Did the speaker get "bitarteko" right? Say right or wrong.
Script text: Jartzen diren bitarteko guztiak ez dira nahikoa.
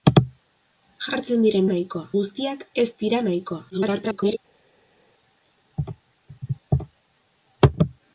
wrong